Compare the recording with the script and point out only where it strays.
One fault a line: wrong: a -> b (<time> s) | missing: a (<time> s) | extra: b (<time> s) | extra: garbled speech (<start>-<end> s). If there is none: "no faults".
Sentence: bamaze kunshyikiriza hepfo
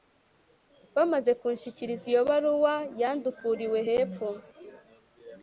extra: iyo baruwa yandukuriwe (2.1 s)